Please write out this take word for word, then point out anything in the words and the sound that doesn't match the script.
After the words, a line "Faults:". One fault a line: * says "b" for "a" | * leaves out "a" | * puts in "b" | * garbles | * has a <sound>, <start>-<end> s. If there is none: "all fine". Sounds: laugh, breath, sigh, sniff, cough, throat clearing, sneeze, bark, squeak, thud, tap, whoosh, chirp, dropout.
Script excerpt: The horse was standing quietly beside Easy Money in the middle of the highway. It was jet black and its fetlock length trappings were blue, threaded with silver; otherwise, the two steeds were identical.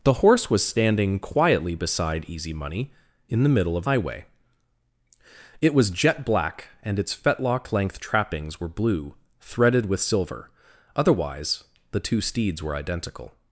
The horse was standing quietly beside Easy Money in the middle of highway. It was jet black and its fetlock length trappings were blue, threaded with silver; otherwise, the two steeds were identical.
Faults:
* leaves out "the"